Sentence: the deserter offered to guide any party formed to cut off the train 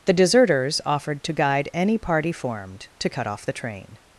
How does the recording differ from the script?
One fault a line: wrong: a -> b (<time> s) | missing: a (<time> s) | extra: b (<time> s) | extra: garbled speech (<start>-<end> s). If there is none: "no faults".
wrong: deserter -> deserters (0.1 s)